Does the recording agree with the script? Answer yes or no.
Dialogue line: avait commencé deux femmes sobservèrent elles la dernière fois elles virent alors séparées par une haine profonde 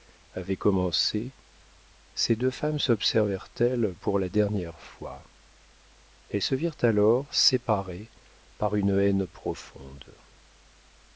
no